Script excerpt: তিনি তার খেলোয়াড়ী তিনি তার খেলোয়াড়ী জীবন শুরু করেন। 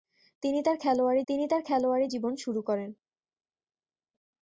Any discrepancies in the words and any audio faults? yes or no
no